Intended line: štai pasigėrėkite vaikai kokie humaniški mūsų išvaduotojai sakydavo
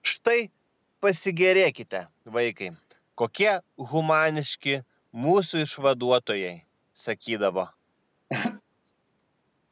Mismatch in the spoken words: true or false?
false